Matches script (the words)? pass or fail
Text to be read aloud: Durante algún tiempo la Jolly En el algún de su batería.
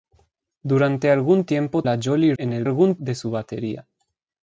pass